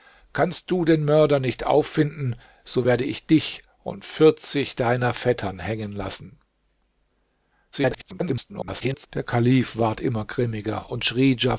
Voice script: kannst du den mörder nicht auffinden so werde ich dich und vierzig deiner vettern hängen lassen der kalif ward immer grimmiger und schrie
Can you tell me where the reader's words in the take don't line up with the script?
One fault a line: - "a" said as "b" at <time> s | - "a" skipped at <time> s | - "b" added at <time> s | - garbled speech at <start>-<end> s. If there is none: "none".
- garbled speech at 7.7-9.1 s